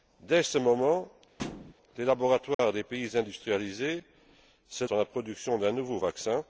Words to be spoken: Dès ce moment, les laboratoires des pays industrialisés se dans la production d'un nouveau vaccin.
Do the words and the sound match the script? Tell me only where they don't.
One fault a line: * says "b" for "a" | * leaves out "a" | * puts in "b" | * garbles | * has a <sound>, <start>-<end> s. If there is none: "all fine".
* has a thud, 1.4-1.7 s
* has a dropout, 2.5-2.6 s